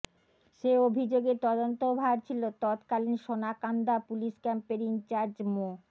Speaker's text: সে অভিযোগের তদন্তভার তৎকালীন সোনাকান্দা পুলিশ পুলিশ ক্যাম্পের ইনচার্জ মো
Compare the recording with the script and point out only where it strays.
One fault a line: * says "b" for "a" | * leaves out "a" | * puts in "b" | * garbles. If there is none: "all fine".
* puts in "ছিল"
* leaves out "পুলিশ"